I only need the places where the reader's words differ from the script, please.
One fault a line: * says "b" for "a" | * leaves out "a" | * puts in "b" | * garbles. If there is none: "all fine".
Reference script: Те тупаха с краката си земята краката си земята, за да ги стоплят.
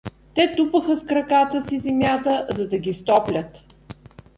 * leaves out "краката си земята"